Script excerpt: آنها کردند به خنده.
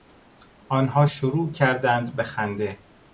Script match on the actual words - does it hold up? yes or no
no